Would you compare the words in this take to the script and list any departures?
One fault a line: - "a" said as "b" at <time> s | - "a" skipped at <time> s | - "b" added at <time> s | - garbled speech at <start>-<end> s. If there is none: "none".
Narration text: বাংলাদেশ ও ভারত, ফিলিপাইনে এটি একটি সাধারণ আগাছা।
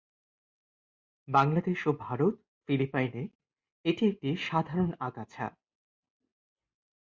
none